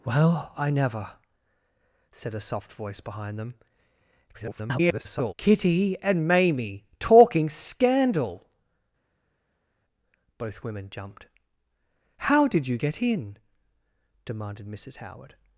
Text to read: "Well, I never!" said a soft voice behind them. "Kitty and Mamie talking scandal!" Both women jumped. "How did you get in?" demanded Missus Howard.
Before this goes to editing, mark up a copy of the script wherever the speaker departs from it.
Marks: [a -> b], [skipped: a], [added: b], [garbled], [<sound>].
"Well, I never!" said a soft voice behind them. [garbled] "Kitty and Mamie talking scandal!" Both women jumped. "How did you get in?" demanded Missus Howard.